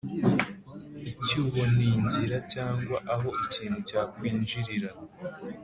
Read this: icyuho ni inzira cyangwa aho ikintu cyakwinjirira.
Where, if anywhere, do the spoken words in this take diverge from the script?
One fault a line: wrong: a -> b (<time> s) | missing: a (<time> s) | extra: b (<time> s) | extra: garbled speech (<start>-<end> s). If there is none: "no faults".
no faults